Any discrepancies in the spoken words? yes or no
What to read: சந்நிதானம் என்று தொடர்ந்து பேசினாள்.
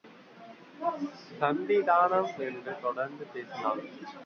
no